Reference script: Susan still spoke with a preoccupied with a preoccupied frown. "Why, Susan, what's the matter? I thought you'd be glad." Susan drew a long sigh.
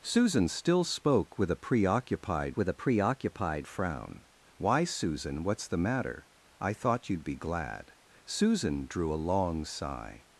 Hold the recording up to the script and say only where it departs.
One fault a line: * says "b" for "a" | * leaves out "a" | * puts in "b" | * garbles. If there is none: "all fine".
all fine